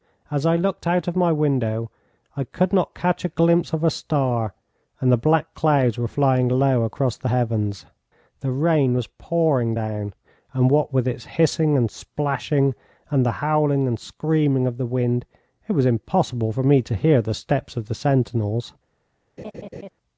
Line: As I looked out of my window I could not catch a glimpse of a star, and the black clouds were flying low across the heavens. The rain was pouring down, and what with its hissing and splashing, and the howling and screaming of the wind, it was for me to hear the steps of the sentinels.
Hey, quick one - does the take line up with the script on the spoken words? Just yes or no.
no